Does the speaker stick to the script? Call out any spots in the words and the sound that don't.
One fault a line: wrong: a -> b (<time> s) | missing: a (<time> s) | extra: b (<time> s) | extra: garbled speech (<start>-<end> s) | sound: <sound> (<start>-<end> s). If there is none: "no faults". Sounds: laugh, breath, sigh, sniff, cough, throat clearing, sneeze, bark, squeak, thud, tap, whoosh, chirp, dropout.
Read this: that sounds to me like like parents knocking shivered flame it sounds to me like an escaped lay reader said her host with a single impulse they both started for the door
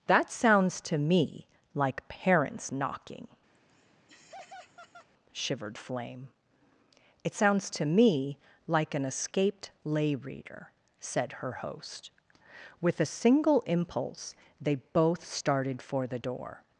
missing: like (2.1 s)
sound: laugh (3.5-5.1 s)